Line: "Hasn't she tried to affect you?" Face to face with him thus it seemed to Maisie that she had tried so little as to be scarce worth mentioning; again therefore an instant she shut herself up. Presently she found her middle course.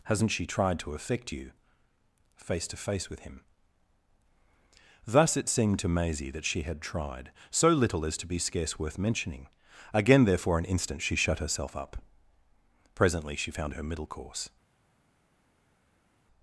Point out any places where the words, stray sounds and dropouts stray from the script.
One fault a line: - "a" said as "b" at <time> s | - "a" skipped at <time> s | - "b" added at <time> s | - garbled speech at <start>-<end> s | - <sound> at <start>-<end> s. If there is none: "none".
none